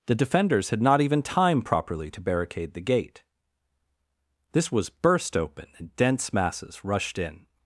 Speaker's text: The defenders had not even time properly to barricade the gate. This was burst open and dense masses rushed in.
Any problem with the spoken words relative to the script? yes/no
no